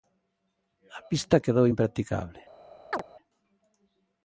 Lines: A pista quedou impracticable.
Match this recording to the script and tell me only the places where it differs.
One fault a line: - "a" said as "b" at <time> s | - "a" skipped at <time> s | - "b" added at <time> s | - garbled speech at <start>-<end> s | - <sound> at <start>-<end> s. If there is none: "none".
- chirp at 2.9-3.0 s